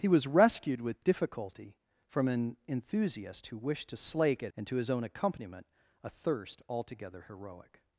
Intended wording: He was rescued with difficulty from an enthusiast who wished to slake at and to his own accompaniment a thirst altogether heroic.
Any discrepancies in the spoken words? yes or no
no